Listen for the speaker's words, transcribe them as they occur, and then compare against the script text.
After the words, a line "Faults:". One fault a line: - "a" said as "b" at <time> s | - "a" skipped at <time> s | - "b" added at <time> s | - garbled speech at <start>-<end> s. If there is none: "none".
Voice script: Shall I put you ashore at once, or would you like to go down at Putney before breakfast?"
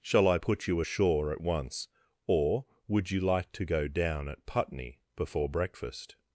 Shall I put you ashore at once, or would you like to go down at Putney before breakfast?"
Faults:
none